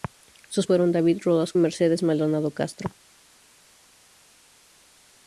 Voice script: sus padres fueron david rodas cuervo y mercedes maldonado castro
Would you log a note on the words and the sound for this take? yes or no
yes